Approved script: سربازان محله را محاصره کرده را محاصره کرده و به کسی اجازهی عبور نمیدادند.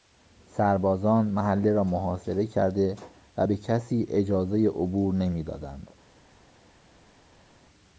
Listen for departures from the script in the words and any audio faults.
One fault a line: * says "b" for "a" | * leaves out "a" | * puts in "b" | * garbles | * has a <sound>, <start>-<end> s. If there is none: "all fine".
* leaves out "را محاصره کرده"